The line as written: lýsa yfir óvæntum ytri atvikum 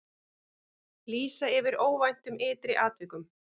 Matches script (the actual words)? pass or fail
pass